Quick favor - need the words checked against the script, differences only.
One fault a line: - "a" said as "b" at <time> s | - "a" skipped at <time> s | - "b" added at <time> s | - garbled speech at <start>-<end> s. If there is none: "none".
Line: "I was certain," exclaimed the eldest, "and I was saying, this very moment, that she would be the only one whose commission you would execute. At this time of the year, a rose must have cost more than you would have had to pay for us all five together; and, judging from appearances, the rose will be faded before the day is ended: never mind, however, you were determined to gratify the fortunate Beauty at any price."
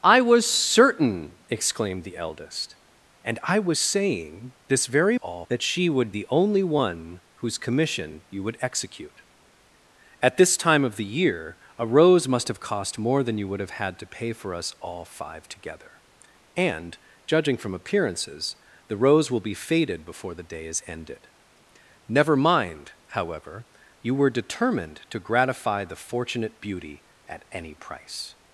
- "moment" said as "all" at 5.1 s
- "be" skipped at 6.1 s